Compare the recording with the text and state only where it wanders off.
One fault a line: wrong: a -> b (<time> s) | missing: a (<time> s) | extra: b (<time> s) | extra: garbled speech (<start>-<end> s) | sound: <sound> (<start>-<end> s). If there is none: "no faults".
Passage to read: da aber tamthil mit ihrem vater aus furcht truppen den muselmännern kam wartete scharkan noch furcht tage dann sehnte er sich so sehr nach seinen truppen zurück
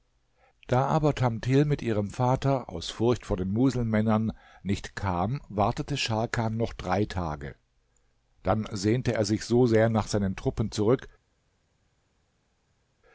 wrong: truppen -> vor (3.2 s)
extra: nicht (4.6 s)
wrong: furcht -> drei (6.7 s)